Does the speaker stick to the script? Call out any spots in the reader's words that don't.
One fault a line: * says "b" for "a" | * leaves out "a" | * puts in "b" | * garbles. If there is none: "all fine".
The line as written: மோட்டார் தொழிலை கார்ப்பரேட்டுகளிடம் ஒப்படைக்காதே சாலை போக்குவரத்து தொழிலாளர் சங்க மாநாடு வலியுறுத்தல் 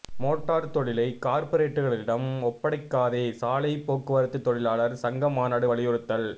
all fine